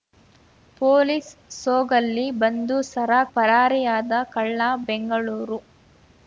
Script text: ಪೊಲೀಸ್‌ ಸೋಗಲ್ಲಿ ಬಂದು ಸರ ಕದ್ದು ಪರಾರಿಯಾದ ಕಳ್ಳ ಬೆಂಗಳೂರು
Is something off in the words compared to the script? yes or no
yes